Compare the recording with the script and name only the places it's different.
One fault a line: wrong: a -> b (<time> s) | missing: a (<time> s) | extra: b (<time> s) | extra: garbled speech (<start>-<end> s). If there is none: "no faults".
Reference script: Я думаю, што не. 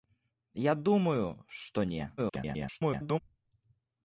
extra: garbled speech (2.2-3.2 s)